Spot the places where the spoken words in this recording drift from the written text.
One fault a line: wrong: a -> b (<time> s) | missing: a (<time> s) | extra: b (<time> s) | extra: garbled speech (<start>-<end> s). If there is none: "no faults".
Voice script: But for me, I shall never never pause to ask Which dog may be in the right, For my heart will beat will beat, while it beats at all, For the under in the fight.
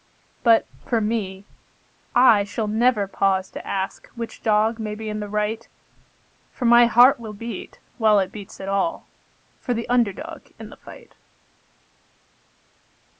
missing: never (3.1 s)
missing: will beat (7.8 s)
extra: dog (10.1 s)